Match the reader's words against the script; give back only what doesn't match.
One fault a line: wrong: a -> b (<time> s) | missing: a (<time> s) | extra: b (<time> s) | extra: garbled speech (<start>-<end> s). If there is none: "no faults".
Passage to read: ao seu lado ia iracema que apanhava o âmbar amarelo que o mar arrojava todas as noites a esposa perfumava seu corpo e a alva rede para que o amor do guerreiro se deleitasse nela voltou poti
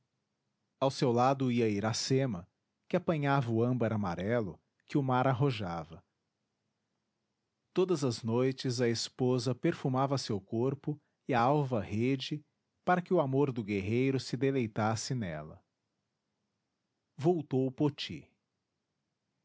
no faults